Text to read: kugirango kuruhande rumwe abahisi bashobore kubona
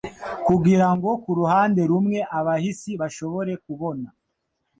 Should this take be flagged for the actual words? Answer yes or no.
no